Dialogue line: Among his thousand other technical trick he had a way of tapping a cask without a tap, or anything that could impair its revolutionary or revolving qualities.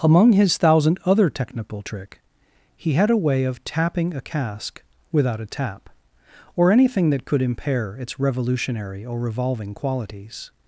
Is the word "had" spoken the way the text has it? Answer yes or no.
yes